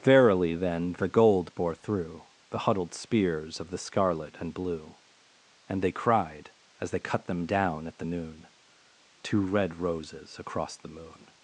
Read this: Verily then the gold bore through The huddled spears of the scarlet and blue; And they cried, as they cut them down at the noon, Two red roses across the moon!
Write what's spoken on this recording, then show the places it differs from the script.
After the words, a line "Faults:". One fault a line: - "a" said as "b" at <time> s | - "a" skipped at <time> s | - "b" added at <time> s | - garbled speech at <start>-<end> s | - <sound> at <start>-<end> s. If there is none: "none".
Verily then the gold bore through The huddled spears of the scarlet and blue; And they cried, as they cut them down at the noon, Two red roses across the moon!
Faults:
none